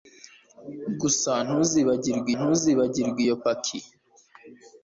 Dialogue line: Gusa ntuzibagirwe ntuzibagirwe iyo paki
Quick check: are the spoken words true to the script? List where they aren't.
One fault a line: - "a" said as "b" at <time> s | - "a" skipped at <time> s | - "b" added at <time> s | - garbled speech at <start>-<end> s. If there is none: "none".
none